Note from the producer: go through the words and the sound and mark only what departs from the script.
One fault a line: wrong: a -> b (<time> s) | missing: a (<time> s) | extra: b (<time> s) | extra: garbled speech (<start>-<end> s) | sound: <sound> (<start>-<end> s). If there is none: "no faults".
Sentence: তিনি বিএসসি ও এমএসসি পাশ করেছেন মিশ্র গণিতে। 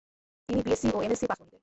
missing: করেছেন মিশ্র (1.4 s)